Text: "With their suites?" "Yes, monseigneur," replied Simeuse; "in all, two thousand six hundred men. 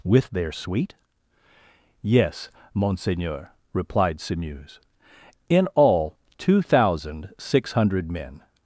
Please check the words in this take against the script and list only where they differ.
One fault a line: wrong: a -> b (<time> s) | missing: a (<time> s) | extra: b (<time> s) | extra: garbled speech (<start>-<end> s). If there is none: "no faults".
wrong: suites -> suite (0.5 s)